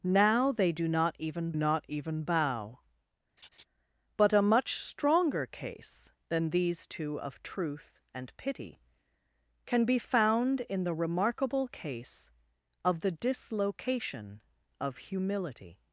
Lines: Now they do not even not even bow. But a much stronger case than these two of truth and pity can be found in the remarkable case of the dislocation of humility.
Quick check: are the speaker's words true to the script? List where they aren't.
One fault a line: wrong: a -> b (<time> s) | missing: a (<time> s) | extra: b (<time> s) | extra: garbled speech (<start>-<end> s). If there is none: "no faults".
no faults